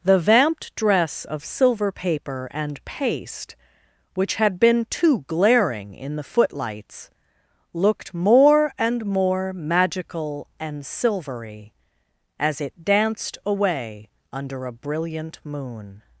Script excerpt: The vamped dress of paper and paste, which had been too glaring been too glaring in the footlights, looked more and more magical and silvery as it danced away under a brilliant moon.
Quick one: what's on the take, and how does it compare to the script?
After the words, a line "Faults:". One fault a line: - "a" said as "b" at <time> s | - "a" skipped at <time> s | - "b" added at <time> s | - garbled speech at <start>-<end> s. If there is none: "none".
The vamped dress of silver paper and paste, which had been too glaring in the footlights, looked more and more magical and silvery as it danced away under a brilliant moon.
Faults:
- "silver" added at 1.4 s
- "been too glaring" skipped at 5.9 s